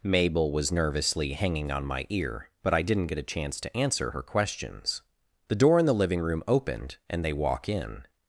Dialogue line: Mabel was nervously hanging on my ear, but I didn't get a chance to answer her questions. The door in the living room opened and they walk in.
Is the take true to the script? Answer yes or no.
yes